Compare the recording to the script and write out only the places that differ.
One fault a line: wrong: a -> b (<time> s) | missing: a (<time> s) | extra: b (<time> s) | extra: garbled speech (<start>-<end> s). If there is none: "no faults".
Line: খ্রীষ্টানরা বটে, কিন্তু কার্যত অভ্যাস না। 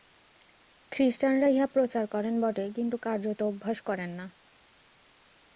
extra: ইহা প্রচার করেন (1.5 s)
extra: করেন (3.8 s)